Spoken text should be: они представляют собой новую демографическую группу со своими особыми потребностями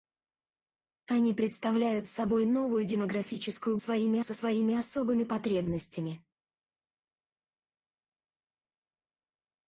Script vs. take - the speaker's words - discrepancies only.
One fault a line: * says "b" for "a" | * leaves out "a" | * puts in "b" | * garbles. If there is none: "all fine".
* says "своими" for "группу"